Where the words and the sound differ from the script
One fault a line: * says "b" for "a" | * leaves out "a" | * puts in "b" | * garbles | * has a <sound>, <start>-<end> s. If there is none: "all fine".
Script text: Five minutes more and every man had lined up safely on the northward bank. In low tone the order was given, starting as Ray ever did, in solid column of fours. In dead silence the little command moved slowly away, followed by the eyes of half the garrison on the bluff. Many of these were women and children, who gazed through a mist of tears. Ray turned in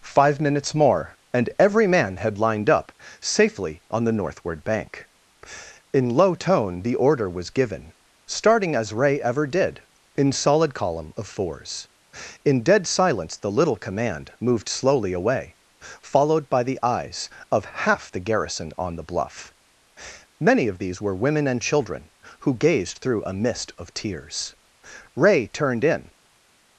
all fine